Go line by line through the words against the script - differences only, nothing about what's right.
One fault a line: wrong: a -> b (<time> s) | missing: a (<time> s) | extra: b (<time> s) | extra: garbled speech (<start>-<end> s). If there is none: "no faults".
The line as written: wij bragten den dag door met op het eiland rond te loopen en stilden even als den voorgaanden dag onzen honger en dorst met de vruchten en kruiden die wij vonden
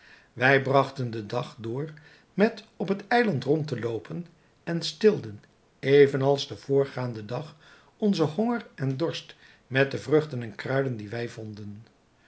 no faults